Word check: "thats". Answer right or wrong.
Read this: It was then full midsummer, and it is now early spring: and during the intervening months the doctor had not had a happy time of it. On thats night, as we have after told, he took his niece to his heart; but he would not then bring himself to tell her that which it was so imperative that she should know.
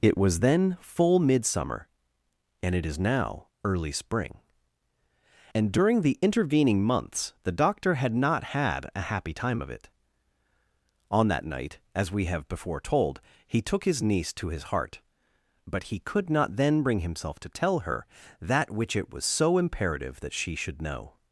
wrong